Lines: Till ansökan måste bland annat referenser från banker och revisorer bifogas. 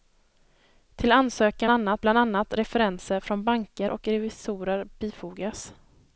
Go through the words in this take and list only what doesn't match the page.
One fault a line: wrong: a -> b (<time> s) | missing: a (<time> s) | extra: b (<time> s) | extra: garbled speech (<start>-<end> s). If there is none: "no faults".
wrong: måste -> annat (1.7 s)